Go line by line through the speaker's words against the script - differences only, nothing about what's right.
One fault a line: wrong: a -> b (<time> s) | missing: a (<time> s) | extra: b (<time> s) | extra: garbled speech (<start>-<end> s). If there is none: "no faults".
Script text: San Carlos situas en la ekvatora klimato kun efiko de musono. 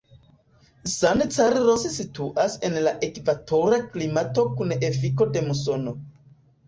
no faults